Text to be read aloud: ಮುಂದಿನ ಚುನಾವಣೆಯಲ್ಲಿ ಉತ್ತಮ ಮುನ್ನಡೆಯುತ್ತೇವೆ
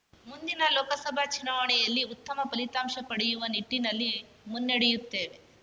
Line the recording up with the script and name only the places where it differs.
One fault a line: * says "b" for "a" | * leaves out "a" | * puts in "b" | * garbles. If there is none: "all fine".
* puts in "ಲೋಕಸಭಾ"
* puts in "ಫಲಿತಾಂಶ ಪಡೆಯುವ ನಿಟ್ಟಿನಲ್ಲಿ"